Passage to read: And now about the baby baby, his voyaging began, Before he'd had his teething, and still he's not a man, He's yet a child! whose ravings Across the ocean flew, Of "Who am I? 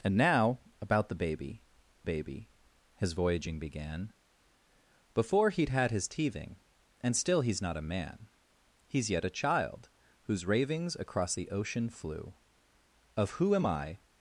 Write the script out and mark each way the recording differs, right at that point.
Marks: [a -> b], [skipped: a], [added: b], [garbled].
And now about the baby baby, his voyaging began, Before he'd had his teething, and still he's not a man, He's yet a child! whose ravings Across the ocean flew, Of "Who am I?